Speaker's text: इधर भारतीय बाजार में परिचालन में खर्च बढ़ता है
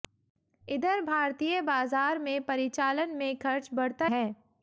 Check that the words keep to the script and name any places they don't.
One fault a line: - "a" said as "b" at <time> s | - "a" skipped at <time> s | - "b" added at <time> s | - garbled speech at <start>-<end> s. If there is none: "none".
none